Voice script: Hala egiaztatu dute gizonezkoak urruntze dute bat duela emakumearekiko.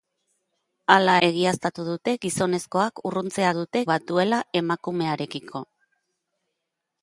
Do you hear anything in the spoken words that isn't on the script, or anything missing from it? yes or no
no